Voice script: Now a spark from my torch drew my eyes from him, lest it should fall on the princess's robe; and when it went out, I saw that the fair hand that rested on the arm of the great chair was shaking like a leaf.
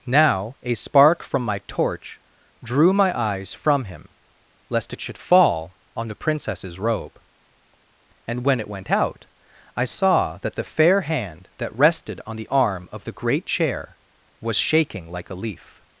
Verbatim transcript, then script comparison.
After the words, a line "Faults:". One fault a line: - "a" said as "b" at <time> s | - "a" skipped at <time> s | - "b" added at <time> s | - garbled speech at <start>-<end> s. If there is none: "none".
Now a spark from my torch drew my eyes from him, lest it should fall on the princess's robe; and when it went out, I saw that the fair hand that rested on the arm of the great chair was shaking like a leaf.
Faults:
none